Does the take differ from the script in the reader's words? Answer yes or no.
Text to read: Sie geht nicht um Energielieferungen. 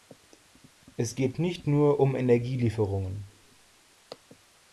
yes